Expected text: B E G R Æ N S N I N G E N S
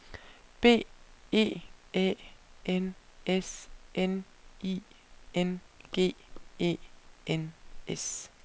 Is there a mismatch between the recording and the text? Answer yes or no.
yes